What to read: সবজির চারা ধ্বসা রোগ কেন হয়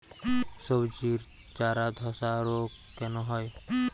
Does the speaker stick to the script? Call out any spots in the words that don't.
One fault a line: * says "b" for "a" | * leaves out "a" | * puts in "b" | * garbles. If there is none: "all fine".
all fine